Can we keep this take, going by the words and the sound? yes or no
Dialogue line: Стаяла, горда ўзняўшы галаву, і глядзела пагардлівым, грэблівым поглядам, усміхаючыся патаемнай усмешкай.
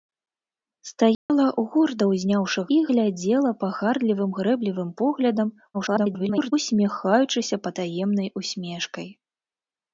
no